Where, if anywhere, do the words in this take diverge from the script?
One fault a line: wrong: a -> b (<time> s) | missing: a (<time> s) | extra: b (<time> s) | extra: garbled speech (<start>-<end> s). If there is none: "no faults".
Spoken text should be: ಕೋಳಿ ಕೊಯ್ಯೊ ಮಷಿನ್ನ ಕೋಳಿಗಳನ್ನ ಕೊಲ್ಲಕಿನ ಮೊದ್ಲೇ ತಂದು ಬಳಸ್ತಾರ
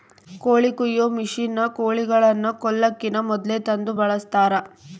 no faults